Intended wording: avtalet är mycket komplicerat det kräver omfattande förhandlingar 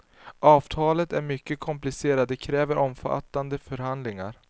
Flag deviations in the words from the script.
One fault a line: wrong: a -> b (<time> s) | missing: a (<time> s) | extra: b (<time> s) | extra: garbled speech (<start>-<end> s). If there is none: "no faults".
no faults